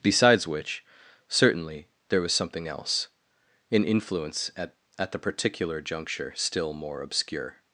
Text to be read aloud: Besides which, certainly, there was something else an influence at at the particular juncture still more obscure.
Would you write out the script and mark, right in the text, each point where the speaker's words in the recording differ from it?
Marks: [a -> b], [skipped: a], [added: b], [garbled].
Besides which, certainly, there was something else an influence at at the particular juncture still more obscure.